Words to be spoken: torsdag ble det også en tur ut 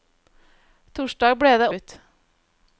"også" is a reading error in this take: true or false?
true